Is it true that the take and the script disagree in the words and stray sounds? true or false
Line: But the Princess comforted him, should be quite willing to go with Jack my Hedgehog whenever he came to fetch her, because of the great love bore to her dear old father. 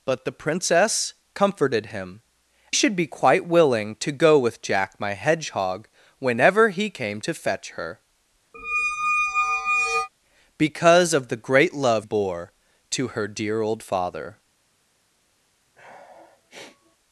true